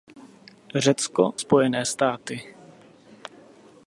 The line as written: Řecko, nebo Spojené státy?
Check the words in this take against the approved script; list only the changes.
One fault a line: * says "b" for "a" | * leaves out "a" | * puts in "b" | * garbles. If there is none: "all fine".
* leaves out "nebo"